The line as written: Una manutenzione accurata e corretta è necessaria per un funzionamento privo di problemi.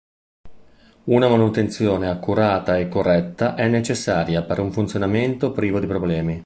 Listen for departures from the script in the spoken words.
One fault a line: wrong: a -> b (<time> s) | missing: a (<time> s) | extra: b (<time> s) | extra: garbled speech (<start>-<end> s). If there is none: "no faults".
no faults